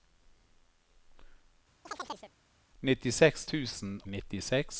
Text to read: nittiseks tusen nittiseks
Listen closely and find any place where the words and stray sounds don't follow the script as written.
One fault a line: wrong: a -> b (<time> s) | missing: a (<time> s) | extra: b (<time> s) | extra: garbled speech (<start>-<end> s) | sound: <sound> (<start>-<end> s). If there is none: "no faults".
sound: chirp (1.9-2.3 s)